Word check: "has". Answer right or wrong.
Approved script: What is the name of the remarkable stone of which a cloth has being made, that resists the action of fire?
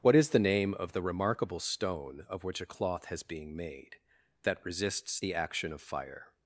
right